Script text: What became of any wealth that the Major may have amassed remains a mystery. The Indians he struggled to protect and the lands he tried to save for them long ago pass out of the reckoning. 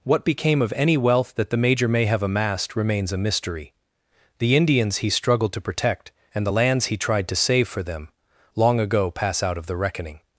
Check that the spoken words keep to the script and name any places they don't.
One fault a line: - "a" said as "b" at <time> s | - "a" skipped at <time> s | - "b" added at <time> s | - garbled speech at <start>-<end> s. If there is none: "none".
none